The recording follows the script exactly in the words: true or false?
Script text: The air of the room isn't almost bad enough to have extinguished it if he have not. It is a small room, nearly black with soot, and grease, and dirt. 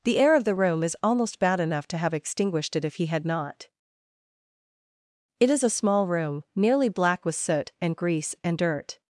false